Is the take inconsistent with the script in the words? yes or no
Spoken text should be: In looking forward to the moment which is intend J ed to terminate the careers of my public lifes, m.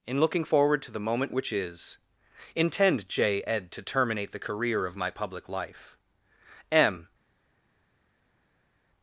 yes